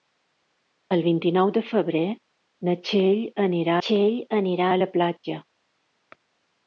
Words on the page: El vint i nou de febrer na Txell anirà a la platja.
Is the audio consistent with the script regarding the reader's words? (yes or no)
no